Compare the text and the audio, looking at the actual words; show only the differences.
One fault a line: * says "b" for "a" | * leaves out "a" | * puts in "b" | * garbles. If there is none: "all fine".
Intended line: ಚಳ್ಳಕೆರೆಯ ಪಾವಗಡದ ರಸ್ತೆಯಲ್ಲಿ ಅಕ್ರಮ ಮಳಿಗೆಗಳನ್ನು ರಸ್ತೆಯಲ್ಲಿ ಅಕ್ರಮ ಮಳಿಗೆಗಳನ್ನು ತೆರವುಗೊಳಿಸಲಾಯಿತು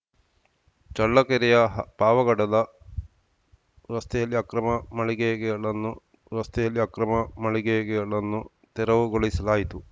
all fine